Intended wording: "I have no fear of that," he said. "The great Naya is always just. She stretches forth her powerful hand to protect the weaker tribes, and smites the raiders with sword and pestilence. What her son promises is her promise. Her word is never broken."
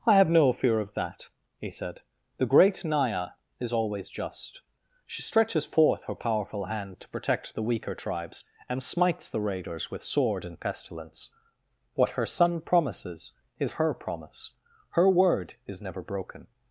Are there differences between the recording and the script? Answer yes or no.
no